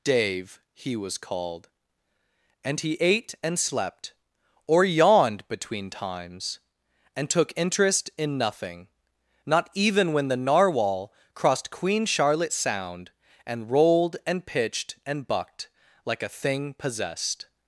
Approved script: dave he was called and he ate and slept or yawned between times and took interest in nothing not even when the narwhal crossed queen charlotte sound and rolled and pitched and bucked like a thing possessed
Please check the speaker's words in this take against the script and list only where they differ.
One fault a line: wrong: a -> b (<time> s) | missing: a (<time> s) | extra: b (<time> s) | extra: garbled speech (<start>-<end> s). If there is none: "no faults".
no faults